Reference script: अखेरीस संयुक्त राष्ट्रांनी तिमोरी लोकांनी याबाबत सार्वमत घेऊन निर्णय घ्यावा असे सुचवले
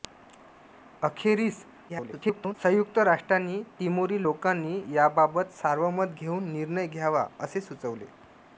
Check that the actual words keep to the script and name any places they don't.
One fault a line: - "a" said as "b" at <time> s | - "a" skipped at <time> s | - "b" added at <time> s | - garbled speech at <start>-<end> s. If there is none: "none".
- garbled speech at 1.9-2.5 s